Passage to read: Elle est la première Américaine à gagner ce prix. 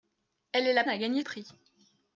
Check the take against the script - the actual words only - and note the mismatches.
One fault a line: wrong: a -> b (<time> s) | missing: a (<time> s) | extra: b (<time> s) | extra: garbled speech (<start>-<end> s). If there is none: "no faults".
missing: première Américaine (0.8 s)
missing: ce (1.2 s)